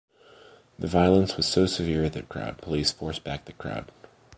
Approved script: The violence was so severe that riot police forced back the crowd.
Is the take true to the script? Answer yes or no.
no